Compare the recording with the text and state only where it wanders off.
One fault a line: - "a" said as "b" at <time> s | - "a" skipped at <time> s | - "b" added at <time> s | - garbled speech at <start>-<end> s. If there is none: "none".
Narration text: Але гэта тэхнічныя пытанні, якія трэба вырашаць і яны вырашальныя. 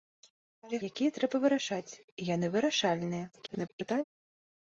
- "гэта тэхнічныя пытанні" skipped at 0.8 s
- garbled speech at 3.3-4.0 s